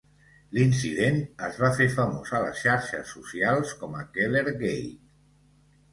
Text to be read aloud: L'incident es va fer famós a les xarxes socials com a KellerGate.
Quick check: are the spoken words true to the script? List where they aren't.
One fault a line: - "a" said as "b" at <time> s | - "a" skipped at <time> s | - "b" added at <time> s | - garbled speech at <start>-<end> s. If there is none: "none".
none